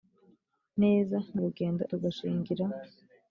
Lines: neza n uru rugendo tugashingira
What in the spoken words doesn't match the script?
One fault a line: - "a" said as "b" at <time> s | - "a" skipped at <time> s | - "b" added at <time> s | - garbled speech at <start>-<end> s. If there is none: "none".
none